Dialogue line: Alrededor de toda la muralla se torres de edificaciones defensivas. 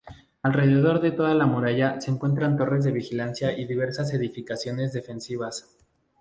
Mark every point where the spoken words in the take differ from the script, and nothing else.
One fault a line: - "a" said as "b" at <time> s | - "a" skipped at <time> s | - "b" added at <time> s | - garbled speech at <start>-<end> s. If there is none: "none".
- "encuentran" added at 2.1 s
- "vigilancia y diversas" added at 2.9 s